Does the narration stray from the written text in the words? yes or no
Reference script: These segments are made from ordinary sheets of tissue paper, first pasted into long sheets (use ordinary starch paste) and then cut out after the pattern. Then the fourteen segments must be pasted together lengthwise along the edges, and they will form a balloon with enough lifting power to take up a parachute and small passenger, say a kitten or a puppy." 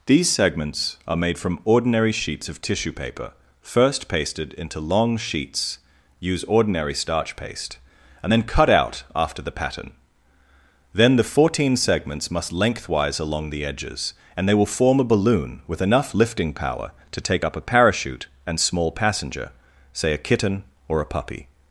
yes